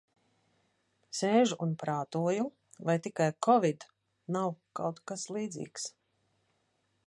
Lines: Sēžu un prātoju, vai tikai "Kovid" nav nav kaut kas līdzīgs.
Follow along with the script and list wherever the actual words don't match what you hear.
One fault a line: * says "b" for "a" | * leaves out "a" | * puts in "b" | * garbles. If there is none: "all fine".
* leaves out "nav"